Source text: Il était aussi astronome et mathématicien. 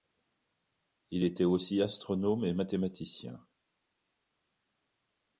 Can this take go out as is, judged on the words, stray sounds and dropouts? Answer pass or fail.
pass